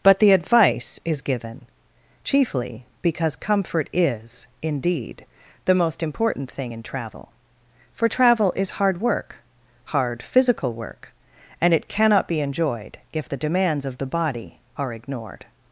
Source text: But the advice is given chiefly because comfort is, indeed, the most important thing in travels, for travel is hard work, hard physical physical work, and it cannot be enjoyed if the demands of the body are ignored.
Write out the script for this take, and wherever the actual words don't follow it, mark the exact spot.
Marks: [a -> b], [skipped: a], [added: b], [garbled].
But the advice is given chiefly because comfort is, indeed, the most important thing in [travels, -> travel] for travel is hard work, hard physical [skipped: physical] work, and it cannot be enjoyed if the demands of the body are ignored.